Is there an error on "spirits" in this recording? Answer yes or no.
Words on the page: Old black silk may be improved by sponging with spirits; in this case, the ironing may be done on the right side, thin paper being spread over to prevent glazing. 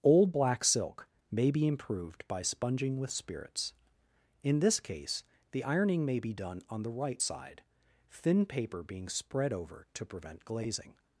no